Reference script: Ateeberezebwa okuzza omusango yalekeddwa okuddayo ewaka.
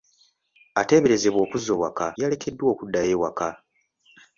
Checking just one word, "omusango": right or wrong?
wrong